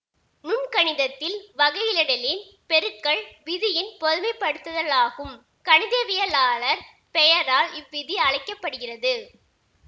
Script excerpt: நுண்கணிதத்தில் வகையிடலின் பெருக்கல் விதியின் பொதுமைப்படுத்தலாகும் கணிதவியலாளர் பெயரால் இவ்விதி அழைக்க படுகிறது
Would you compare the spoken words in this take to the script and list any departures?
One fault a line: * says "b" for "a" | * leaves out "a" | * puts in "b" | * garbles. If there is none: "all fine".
all fine